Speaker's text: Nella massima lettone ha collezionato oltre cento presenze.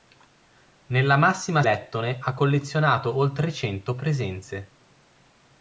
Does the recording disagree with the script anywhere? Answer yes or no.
no